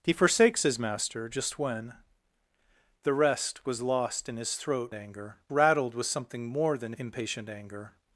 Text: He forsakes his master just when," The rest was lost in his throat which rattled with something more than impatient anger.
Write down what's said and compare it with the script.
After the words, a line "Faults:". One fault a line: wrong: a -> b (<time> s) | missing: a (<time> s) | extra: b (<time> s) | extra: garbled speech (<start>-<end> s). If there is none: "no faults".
He forsakes his master just when," The rest was lost in his throat anger rattled with something more than impatient anger.
Faults:
wrong: which -> anger (4.9 s)